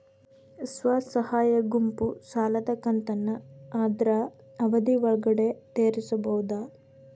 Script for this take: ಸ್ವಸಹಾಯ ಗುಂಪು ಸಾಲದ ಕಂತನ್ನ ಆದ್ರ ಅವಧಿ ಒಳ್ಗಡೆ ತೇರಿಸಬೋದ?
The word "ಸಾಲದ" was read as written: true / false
true